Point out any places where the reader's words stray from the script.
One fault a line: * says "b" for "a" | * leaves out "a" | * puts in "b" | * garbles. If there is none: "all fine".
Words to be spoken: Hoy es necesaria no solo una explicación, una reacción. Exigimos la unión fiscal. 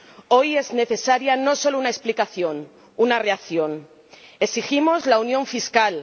all fine